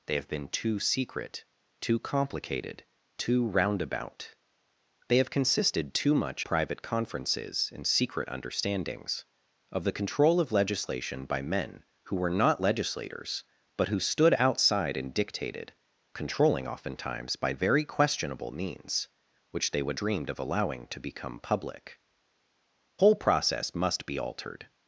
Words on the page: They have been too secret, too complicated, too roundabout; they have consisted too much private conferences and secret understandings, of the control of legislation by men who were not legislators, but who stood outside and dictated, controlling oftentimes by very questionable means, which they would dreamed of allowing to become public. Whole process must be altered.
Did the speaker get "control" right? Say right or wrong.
right